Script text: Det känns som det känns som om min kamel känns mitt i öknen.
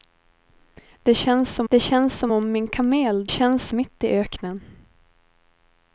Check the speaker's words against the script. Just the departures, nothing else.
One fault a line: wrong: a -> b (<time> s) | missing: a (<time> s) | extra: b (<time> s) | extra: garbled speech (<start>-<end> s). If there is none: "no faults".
no faults